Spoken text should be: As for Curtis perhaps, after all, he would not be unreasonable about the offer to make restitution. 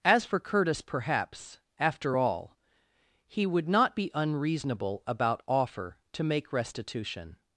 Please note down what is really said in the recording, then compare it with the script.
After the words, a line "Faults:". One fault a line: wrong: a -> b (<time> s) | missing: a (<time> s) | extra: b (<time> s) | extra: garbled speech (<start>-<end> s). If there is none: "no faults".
As for Curtis perhaps, after all, he would not be unreasonable about offer to make restitution.
Faults:
missing: the (5.4 s)